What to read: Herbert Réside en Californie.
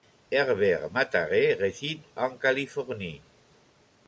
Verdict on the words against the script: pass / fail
fail